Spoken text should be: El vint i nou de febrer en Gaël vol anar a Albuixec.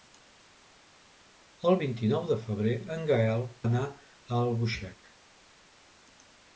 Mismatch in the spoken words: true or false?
true